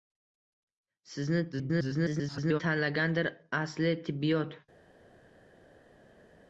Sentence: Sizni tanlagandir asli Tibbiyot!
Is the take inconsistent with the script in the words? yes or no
yes